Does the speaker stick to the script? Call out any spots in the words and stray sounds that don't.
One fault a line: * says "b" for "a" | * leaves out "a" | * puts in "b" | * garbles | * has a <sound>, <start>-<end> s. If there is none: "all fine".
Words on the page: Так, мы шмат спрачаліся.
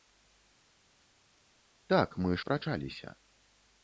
* leaves out "шмат"